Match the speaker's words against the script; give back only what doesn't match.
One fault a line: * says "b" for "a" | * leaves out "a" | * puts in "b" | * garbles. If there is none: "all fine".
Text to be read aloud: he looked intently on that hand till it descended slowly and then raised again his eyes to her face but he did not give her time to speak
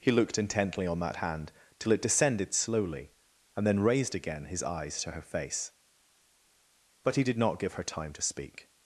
all fine